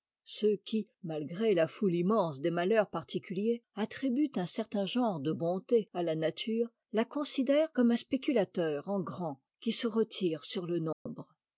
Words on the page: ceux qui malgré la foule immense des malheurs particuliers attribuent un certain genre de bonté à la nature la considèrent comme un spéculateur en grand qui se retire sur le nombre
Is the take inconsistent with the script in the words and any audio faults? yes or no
yes